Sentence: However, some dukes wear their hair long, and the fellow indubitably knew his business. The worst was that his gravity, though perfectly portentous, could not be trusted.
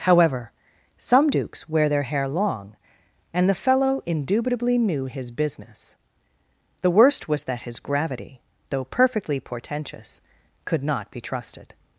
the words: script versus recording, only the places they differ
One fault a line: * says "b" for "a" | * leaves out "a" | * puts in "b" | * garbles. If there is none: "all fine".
all fine